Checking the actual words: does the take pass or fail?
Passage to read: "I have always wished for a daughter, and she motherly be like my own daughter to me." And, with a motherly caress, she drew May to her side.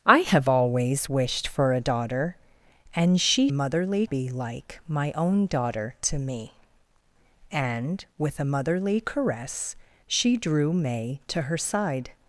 pass